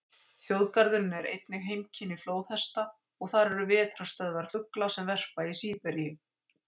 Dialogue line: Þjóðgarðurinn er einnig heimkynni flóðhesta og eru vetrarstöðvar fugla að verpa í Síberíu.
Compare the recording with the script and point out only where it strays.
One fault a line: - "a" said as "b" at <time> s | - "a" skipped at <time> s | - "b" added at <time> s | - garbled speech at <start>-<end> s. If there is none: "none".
- "þar" added at 3.3 s
- "að" said as "sem" at 5.0 s